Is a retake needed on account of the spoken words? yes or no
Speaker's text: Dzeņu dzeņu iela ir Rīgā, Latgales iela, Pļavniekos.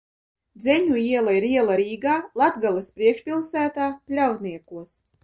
yes